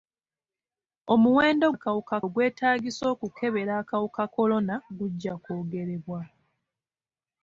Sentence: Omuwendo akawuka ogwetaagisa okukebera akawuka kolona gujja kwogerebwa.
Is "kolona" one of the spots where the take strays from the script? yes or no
no